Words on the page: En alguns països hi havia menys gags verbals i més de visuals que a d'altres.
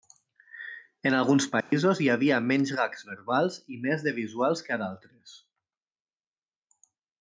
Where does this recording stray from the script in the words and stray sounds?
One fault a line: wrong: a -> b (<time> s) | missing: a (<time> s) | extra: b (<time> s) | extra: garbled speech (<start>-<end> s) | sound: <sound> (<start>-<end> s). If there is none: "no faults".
sound: dropout (1.6-1.7 s)